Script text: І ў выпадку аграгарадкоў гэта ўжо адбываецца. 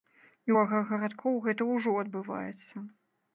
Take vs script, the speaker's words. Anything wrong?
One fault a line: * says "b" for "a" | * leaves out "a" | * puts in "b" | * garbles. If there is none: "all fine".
* leaves out "ў выпадку"